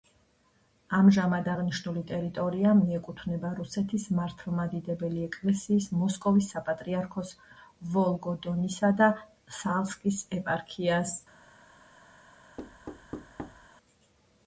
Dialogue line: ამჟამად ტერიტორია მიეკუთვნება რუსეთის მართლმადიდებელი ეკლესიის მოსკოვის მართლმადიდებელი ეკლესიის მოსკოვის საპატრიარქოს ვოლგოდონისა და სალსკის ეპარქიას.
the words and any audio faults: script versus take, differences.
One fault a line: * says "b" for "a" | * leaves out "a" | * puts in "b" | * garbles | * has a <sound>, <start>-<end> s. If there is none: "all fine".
* puts in "აღნიშნული"
* leaves out "მართლმადიდებელი ეკლესიის მოსკოვის"
* has a thud, 12.6-13.7 s